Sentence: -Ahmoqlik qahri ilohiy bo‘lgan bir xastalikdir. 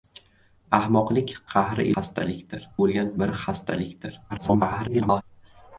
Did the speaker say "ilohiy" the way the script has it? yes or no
no